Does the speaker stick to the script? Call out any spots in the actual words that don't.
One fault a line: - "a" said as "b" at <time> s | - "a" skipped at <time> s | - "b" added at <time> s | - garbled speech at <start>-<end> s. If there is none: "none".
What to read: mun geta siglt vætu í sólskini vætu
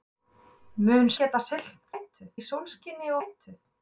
none